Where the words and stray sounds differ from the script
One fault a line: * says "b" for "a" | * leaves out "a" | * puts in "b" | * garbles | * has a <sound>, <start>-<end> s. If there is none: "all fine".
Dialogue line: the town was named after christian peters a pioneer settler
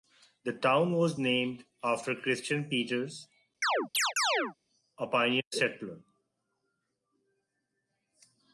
* has a chirp, 3.6-4.5 s